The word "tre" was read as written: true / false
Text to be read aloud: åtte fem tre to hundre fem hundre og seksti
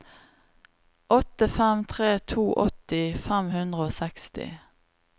true